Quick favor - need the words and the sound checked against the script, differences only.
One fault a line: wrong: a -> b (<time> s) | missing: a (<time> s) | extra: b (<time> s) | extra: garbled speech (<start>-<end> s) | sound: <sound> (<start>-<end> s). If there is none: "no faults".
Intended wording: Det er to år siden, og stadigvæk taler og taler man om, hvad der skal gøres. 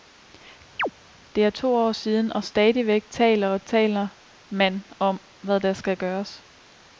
sound: chirp (0.8-0.9 s)